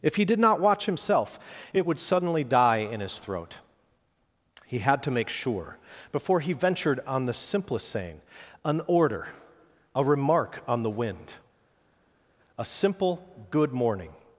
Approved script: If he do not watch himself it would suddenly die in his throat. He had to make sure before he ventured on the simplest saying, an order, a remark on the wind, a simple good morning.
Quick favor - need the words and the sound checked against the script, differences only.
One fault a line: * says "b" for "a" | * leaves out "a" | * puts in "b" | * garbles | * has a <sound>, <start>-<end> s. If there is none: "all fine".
* says "did" for "do"